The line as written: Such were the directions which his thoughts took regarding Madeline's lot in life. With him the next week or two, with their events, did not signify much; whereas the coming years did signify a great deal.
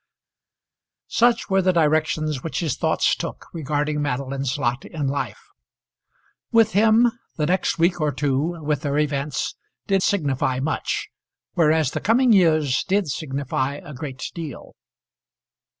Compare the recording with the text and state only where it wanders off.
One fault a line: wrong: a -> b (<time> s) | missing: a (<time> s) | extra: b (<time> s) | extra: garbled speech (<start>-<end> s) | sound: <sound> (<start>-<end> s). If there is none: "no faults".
missing: not (10.0 s)